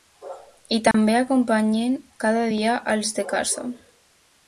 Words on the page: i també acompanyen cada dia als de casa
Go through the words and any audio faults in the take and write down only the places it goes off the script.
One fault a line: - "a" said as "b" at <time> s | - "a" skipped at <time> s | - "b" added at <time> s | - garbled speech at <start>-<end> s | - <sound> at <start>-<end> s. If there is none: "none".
- dropout at 0.9-0.9 s